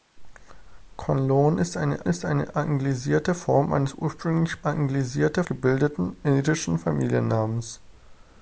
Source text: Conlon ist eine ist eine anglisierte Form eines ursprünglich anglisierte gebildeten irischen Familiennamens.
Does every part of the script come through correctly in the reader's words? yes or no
yes